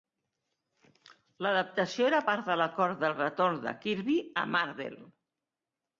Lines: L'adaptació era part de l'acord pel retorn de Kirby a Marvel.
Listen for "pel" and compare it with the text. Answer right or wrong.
wrong